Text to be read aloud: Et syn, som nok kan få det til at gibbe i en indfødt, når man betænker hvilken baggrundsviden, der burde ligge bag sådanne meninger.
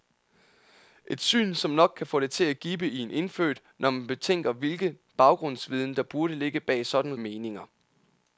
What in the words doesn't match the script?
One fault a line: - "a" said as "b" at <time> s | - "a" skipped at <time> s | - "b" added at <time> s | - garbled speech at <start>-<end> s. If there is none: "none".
none